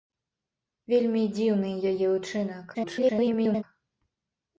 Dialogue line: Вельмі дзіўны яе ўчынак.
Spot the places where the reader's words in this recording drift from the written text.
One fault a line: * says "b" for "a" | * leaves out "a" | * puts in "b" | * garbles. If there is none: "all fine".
* garbles